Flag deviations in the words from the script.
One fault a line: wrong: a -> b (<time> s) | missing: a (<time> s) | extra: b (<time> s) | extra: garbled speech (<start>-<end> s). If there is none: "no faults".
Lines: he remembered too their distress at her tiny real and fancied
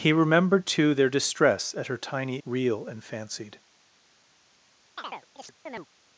no faults